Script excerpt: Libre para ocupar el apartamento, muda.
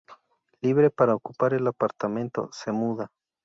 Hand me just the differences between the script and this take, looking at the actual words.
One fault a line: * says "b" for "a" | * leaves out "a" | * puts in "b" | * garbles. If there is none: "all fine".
* puts in "se"